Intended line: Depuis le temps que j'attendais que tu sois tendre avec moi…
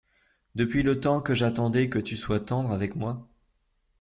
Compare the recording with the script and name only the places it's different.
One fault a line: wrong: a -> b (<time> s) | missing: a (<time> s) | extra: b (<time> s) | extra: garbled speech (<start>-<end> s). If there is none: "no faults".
no faults